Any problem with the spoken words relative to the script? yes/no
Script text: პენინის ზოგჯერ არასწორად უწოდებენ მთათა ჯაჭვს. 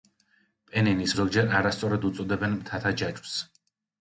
no